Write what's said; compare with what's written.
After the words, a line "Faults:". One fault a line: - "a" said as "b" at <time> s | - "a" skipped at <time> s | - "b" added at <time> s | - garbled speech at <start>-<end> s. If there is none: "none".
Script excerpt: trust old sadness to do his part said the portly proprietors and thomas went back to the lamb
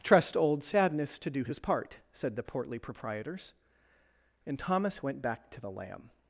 trust old sadness to do his part said the portly proprietors and thomas went back to the lamb
Faults:
none